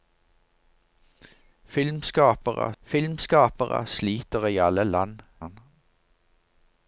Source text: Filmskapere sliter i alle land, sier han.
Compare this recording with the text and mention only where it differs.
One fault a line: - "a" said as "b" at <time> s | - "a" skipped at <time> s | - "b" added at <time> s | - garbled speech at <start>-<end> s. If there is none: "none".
- "filmskapere" added at 2.8 s
- "sier" skipped at 5.2 s